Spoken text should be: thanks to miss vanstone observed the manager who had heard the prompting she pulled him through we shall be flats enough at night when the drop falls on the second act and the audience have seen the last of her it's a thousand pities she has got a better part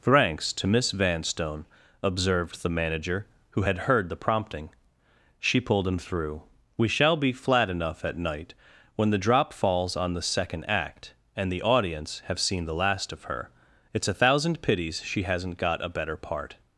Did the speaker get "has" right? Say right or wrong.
wrong